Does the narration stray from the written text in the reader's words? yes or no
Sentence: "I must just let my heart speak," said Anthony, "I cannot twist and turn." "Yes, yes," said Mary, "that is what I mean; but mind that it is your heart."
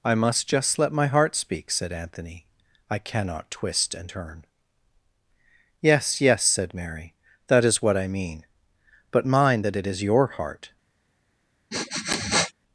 no